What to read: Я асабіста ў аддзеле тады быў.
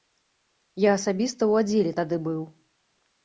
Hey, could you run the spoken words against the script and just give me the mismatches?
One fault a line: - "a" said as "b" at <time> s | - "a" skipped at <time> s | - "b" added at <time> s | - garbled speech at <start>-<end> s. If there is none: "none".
none